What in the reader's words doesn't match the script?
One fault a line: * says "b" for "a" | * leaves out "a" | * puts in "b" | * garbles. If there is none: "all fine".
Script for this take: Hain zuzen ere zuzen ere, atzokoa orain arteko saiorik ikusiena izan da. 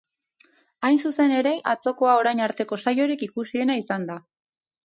* leaves out "zuzen ere"